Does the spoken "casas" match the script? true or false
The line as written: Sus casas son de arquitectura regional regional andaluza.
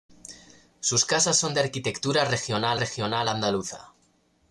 true